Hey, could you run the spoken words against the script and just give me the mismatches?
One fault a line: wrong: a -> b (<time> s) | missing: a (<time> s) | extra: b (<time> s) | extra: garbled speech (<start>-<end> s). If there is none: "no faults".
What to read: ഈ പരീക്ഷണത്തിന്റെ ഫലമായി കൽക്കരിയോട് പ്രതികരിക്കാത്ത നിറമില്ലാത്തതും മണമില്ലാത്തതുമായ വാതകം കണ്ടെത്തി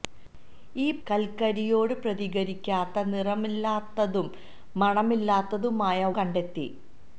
missing: പരീക്ഷണത്തിന്റെ ഫലമായി (1.0 s)
missing: വാതകം (6.0 s)